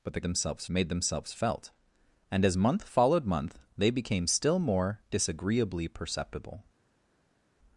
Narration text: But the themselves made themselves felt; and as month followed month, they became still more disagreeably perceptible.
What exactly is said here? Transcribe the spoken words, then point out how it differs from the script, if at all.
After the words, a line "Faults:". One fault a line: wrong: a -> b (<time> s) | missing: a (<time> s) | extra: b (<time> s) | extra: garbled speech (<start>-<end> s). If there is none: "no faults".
But the themselves made themselves felt; and as month followed month, they became still more disagreeably perceptible.
Faults:
no faults